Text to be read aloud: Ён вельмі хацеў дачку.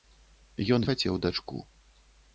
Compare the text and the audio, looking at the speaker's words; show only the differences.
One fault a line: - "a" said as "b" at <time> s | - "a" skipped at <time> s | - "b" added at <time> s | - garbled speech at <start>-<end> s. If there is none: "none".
- "вельмі" skipped at 0.9 s